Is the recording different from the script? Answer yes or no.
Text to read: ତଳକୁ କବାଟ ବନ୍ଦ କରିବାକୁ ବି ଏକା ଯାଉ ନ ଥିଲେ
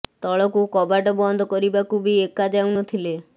no